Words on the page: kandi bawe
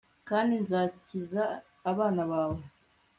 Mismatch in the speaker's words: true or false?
true